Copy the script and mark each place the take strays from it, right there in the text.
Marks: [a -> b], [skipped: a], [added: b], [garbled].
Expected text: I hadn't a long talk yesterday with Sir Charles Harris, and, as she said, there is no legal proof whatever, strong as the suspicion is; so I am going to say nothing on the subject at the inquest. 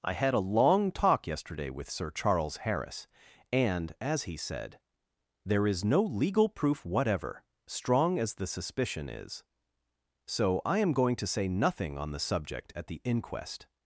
I [hadn't -> had] a long talk yesterday with Sir Charles Harris, and, as [she -> he] said, there is no legal proof whatever, strong as the suspicion is; so I am going to say nothing on the subject at the inquest.